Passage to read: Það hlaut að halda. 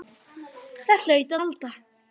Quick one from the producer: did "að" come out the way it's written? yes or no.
no